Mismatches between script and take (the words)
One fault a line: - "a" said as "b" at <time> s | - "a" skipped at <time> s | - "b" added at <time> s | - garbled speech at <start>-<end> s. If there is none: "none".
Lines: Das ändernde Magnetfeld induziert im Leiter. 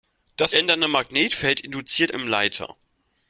none